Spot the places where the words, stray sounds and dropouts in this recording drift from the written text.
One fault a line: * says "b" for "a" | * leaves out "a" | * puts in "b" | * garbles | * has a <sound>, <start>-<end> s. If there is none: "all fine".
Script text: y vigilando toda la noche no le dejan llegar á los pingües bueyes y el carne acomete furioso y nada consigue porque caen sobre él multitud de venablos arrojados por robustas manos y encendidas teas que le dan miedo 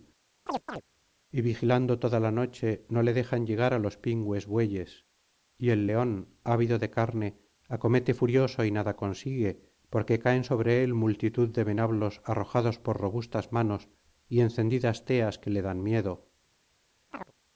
* has a chirp, 0.5-0.8 s
* puts in "león ávido de"
* has a chirp, 17.1-17.3 s